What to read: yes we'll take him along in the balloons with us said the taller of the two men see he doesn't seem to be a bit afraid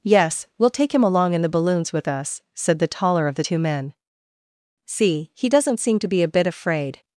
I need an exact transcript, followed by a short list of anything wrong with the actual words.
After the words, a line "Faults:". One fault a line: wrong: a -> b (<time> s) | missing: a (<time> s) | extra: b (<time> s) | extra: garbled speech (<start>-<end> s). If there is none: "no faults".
yes we'll take him along in the balloons with us said the taller of the two men see he doesn't seem to be a bit afraid
Faults:
no faults